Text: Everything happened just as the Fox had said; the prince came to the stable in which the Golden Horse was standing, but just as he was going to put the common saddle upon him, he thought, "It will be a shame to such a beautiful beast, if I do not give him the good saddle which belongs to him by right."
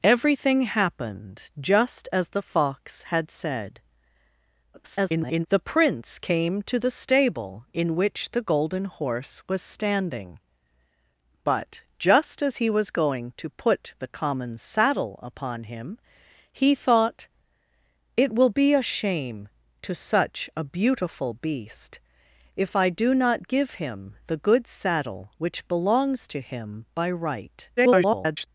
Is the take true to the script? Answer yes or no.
no